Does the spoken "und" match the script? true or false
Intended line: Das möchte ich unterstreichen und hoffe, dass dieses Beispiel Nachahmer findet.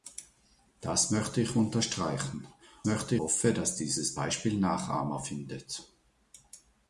false